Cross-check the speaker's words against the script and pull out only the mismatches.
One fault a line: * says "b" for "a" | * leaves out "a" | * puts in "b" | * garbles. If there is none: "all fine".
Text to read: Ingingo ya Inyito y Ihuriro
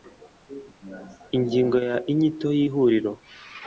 all fine